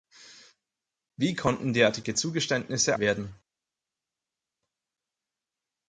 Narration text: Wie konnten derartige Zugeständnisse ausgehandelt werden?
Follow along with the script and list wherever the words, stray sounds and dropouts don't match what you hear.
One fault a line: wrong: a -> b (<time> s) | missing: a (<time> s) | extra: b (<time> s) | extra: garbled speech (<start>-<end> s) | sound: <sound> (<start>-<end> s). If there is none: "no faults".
missing: ausgehandelt (3.0 s)